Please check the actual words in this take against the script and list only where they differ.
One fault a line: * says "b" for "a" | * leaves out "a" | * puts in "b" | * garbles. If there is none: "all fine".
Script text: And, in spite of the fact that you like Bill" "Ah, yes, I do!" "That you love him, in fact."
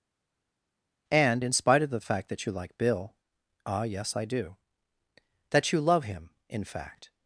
all fine